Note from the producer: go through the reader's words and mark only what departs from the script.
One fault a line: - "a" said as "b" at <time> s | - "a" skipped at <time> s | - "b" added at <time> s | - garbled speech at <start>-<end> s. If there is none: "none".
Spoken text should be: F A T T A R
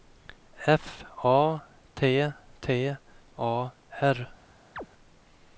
none